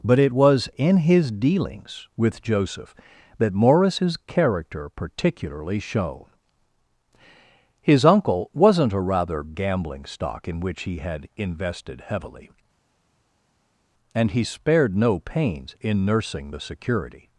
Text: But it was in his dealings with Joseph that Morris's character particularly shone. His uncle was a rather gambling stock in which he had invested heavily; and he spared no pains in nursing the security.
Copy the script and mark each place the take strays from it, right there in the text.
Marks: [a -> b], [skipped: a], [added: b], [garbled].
But it was in his dealings with Joseph that Morris's character particularly shone. His uncle [was -> wasn't] a rather gambling stock in which he had invested heavily; and he spared no pains in nursing the security.